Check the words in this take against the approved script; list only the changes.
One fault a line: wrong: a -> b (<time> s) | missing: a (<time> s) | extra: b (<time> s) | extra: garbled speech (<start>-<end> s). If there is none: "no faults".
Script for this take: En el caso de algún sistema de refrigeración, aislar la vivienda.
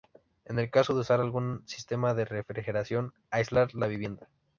extra: usar (1.0 s)